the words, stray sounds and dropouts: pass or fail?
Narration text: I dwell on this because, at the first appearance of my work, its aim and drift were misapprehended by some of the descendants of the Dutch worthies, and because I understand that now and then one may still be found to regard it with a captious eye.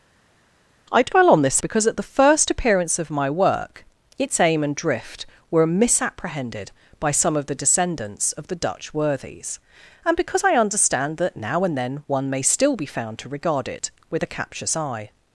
pass